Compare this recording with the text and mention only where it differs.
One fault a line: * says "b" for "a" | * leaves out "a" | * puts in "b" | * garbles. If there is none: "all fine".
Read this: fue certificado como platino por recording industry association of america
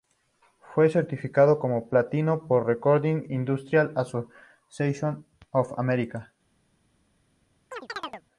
all fine